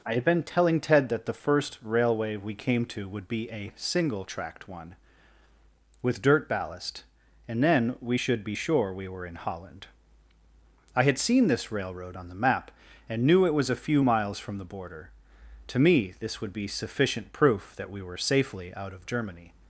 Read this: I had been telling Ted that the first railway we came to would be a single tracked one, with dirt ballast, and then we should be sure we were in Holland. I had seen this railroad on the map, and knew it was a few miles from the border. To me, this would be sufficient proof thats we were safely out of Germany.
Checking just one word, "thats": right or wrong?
wrong